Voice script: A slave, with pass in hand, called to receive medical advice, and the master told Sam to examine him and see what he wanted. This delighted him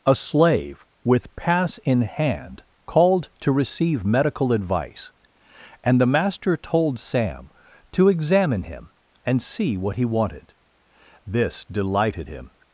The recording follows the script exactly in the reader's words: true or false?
true